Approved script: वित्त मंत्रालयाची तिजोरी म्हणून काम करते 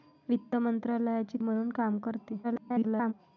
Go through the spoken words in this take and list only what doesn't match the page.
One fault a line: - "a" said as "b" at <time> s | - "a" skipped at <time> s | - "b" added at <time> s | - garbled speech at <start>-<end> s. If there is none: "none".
- "तिजोरी" skipped at 1.4 s
- garbled speech at 2.4-3.1 s